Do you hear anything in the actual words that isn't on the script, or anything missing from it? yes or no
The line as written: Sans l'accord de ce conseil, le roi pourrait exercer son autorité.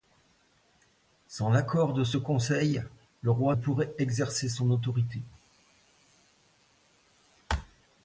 no